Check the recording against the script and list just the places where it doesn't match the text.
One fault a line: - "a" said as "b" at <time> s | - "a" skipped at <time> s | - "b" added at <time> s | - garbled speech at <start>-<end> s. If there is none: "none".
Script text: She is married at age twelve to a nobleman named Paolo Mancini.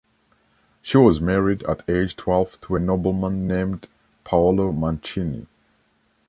- "is" said as "was" at 1.0 s